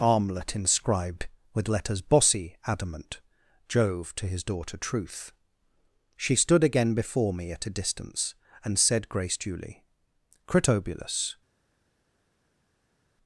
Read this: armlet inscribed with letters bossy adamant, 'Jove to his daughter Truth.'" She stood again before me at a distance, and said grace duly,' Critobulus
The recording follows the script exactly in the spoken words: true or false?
true